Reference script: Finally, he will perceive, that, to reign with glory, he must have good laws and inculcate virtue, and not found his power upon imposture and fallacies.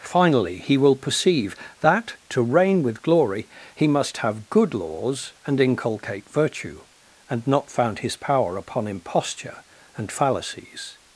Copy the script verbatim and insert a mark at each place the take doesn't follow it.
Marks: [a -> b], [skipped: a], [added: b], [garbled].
Finally, he will perceive, that, to reign with glory, he must have good laws and inculcate virtue, and not found his power upon imposture and fallacies.